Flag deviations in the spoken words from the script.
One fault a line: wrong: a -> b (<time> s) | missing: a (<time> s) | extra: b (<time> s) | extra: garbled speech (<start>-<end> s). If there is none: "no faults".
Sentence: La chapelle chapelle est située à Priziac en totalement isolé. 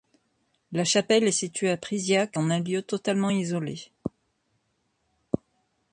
missing: chapelle (1.2 s)
extra: un lieu (2.5 s)